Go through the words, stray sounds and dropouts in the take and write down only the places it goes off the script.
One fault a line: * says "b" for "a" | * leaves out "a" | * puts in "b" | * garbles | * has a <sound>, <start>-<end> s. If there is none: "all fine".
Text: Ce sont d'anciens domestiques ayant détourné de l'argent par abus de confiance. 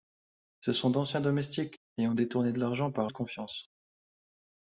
* leaves out "abus"